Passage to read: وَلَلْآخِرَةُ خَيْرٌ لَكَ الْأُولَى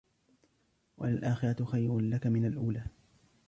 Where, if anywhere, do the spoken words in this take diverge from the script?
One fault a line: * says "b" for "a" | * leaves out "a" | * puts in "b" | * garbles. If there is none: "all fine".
* puts in "مِنَ"